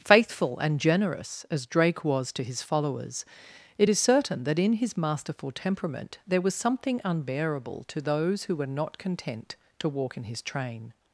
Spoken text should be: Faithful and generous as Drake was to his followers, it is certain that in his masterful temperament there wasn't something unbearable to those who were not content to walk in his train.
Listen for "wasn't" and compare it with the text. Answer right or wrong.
wrong